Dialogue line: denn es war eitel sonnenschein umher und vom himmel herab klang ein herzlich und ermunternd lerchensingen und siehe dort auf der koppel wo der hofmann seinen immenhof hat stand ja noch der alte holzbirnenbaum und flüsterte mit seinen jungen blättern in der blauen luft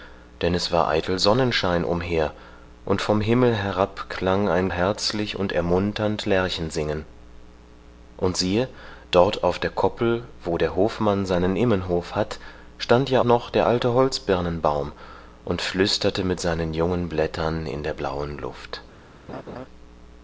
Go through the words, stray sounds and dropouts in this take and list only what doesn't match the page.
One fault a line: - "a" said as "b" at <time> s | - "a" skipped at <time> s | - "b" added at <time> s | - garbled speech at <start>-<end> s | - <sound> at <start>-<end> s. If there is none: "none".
- laugh at 19.3-19.7 s